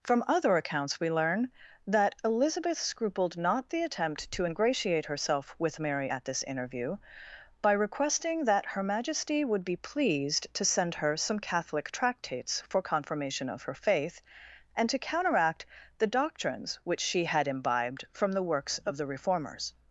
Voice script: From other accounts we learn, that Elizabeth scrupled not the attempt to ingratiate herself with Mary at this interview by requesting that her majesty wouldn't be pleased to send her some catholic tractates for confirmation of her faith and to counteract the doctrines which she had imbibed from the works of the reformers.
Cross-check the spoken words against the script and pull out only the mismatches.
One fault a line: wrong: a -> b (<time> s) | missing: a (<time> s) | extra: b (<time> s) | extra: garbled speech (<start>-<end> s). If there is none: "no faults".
wrong: wouldn't -> would (9.4 s)